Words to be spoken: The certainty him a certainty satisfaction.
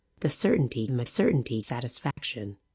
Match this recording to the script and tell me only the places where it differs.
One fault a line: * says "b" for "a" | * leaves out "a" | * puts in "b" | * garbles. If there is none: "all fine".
all fine